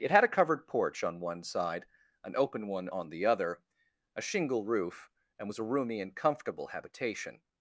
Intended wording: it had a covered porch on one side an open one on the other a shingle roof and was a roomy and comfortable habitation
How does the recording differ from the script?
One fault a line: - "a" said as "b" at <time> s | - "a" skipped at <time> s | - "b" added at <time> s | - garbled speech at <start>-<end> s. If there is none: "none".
none